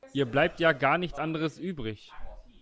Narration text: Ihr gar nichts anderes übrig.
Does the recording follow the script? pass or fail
fail